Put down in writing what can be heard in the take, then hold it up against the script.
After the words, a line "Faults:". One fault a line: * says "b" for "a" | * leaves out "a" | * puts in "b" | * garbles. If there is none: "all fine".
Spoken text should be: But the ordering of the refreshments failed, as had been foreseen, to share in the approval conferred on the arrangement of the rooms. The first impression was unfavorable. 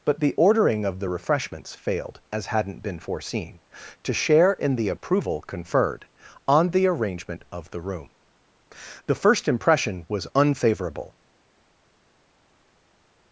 But the ordering of the refreshments failed, as hadn't been foreseen, to share in the approval conferred on the arrangement of the room. The first impression was unfavorable.
Faults:
* says "hadn't" for "had"
* says "room" for "rooms"